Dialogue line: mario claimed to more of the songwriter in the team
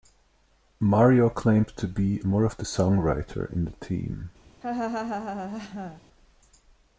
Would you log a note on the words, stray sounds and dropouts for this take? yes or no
yes